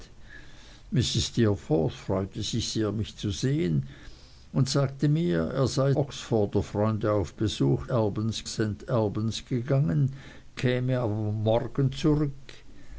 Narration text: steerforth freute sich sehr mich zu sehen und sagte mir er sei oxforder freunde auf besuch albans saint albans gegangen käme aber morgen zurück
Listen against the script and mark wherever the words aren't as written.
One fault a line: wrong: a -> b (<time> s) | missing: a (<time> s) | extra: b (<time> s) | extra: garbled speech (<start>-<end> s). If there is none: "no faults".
no faults